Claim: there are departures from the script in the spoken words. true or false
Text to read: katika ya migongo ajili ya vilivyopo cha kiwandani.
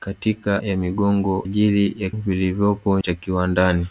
false